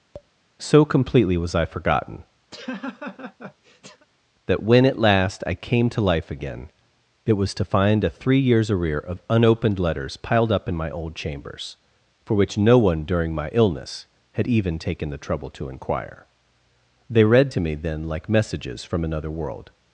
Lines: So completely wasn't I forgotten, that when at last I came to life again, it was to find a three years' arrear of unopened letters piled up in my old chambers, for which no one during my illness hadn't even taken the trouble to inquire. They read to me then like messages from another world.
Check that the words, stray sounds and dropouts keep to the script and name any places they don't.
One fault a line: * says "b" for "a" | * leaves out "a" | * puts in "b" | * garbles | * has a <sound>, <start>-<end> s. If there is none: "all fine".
* has a tap, 0.1-0.3 s
* says "was" for "wasn't"
* has a laugh, 2.5-4.1 s
* says "had" for "hadn't"